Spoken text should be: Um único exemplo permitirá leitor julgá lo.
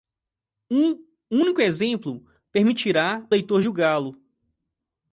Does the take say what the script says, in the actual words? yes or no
yes